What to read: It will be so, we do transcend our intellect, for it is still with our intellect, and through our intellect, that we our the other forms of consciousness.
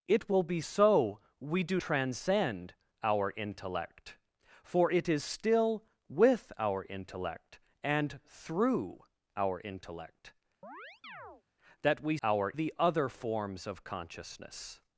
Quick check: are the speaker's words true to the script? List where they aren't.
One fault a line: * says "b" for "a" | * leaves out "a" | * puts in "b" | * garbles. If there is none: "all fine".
all fine